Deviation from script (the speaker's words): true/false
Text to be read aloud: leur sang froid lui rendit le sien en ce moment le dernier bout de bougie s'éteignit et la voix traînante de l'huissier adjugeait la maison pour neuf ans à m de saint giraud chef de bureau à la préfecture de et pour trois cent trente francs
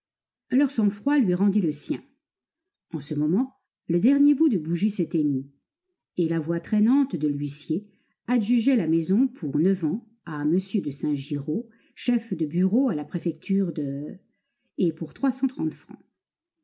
false